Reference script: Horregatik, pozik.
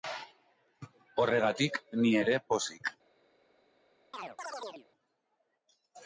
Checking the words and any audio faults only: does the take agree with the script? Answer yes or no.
no